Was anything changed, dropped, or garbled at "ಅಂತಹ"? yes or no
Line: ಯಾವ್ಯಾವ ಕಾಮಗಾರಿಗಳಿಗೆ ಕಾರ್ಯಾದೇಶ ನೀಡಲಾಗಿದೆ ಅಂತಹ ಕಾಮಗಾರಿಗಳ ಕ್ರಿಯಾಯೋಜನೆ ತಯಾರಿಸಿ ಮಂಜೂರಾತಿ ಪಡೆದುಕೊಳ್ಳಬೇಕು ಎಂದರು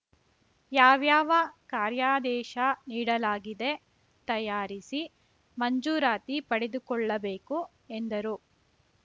yes